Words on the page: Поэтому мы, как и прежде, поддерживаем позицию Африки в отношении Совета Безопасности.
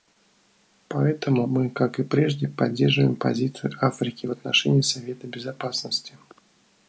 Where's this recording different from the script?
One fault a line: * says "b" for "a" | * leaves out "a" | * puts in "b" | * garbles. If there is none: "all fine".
all fine